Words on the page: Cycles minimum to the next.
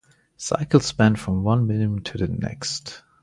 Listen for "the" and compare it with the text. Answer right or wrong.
right